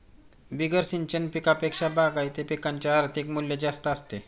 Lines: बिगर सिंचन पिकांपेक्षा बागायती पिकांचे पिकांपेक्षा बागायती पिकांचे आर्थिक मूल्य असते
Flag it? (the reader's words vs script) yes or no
yes